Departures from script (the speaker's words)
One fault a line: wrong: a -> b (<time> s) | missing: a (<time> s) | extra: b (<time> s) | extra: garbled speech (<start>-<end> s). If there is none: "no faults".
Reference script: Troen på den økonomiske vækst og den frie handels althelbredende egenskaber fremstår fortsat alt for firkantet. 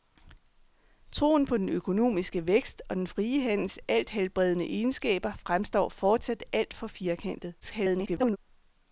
extra: garbled speech (7.6-8.4 s)